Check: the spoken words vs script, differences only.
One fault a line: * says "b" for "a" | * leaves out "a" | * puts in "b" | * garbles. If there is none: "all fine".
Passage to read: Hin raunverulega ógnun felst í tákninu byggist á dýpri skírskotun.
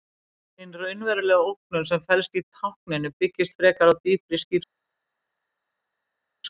* puts in "sem"
* puts in "frekar"